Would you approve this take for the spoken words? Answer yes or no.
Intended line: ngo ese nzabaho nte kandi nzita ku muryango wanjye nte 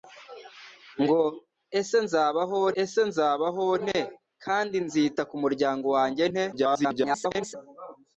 no